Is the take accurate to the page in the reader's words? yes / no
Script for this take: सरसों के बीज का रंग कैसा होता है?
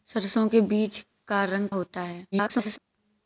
no